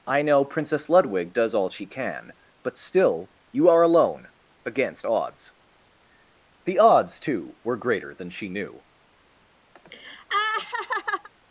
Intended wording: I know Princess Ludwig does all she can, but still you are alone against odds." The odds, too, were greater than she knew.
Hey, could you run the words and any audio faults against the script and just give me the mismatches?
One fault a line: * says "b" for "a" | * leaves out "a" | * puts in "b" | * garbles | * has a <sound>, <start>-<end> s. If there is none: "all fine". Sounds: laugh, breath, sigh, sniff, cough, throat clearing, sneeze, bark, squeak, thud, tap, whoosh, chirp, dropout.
* has a laugh, 9.8-11.3 s